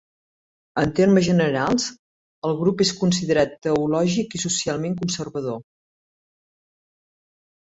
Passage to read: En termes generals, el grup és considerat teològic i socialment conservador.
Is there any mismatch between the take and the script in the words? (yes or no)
no